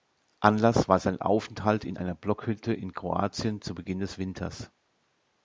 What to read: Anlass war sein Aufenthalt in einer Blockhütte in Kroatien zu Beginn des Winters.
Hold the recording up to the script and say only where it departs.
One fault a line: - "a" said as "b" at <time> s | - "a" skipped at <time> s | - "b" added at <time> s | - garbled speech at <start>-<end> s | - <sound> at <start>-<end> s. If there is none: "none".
none